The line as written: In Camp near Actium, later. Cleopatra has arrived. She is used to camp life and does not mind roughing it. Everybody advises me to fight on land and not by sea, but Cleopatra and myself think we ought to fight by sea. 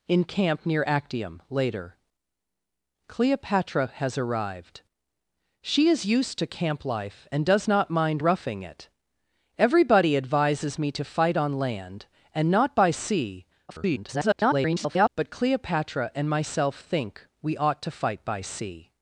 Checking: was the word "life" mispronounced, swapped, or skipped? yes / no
no